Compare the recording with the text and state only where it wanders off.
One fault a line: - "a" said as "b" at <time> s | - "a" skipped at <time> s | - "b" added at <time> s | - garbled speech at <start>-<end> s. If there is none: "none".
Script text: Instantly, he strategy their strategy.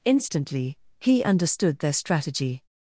- "strategy" said as "understood" at 1.2 s